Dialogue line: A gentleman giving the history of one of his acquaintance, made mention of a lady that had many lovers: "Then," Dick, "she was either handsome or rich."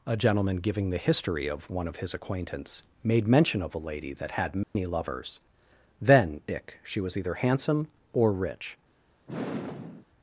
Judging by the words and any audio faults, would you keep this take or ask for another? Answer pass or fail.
fail